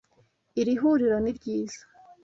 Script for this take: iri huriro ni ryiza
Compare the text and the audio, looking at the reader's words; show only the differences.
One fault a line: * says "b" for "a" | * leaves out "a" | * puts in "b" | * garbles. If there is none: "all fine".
all fine